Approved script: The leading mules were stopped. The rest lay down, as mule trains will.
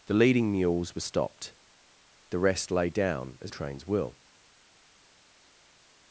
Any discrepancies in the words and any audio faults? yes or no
yes